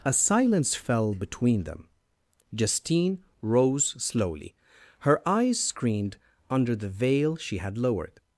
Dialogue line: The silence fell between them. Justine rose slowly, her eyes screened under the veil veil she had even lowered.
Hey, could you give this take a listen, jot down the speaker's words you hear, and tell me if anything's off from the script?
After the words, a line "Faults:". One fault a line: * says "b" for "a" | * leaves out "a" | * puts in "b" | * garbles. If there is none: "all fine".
A silence fell between them. Justine rose slowly, her eyes screened under the veil she had lowered.
Faults:
* says "A" for "The"
* leaves out "veil"
* leaves out "even"